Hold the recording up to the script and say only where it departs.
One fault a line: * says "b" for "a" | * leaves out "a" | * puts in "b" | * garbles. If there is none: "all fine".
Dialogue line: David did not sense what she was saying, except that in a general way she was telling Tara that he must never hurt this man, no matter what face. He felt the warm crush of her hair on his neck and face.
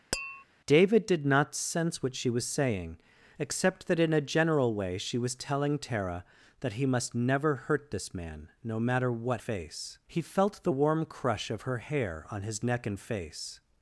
all fine